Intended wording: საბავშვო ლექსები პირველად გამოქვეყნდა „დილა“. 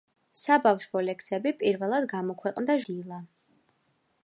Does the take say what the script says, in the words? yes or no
yes